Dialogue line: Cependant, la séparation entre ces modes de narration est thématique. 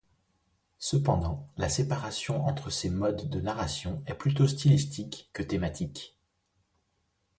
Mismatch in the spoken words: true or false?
true